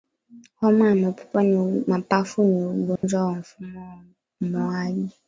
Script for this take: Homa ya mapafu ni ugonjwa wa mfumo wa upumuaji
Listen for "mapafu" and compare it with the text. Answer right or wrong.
right